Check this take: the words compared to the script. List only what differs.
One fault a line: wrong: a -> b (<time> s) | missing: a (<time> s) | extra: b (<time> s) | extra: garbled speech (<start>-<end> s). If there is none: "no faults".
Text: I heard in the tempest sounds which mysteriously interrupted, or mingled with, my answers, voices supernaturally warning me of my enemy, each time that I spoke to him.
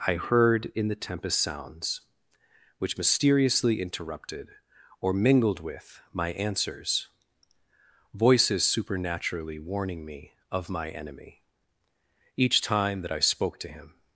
no faults